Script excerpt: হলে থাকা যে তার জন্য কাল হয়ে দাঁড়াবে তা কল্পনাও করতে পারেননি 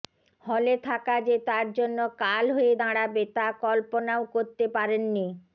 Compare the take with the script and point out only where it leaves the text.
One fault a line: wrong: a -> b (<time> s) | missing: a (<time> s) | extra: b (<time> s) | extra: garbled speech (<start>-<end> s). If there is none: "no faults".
no faults